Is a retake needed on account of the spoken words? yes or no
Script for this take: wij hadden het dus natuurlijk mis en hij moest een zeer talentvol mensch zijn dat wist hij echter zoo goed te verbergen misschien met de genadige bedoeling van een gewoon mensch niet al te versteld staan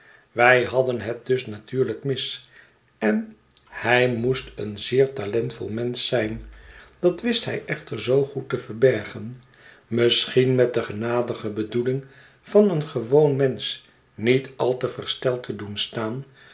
yes